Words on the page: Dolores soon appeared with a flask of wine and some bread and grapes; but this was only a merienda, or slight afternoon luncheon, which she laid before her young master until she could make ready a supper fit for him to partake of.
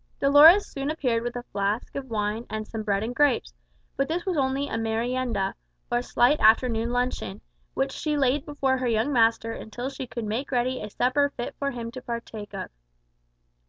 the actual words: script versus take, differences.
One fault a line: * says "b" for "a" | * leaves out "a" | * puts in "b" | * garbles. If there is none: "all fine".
all fine